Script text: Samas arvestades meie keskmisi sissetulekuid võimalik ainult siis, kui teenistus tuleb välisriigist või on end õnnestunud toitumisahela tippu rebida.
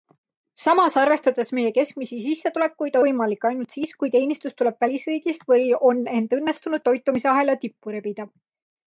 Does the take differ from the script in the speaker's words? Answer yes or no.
no